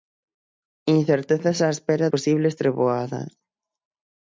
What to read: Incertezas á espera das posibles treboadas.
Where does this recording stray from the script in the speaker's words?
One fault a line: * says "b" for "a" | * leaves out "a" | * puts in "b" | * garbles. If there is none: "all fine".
* leaves out "das"